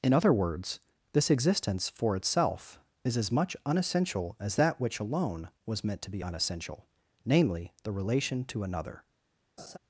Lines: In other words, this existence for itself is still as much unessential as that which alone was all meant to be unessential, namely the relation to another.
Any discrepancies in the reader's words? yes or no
yes